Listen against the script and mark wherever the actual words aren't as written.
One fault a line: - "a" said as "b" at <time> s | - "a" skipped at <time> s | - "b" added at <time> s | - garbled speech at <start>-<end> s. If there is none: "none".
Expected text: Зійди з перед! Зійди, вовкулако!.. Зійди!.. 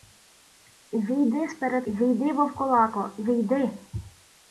none